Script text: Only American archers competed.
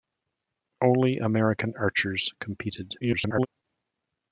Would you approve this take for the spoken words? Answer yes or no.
no